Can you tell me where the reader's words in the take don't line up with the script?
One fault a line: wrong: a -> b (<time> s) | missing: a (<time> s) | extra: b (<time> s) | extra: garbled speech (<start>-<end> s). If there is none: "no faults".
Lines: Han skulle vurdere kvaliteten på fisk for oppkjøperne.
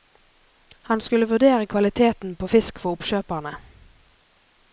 no faults